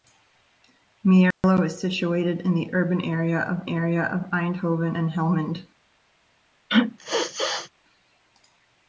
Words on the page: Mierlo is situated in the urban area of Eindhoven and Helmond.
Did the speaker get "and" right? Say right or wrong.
right